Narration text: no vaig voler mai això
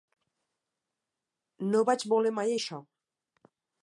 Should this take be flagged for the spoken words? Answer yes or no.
no